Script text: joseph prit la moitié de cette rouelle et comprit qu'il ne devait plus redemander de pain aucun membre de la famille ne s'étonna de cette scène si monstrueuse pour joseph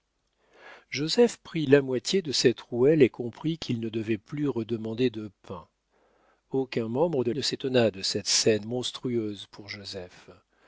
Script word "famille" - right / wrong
wrong